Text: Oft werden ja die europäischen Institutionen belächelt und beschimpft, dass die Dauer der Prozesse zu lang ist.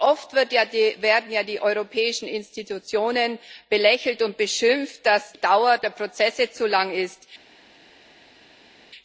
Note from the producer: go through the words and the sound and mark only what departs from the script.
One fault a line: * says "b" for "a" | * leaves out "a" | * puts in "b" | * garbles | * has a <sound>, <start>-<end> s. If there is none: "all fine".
* leaves out "die"